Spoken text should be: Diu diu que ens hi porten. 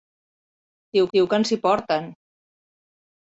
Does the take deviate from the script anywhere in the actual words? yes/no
no